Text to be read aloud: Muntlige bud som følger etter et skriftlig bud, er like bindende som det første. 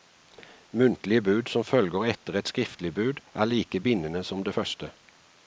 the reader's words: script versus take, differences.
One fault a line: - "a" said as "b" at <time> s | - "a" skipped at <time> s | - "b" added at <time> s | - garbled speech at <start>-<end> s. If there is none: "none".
none